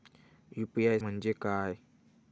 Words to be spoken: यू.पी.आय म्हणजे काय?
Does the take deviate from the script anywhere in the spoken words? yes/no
no